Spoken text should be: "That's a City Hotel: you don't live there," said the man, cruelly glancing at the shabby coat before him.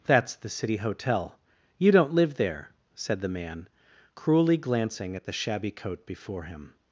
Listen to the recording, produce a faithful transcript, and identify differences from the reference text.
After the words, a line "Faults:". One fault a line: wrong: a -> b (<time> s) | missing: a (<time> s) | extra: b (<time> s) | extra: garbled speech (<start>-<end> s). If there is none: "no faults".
"That's the City Hotel: you don't live there," said the man, cruelly glancing at the shabby coat before him.
Faults:
wrong: a -> the (0.3 s)